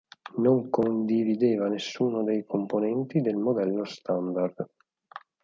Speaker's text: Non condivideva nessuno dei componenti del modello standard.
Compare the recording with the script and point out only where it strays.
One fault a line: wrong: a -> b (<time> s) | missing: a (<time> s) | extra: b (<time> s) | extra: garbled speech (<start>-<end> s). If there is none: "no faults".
no faults